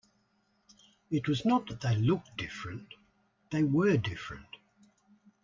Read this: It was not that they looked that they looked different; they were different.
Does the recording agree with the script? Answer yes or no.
no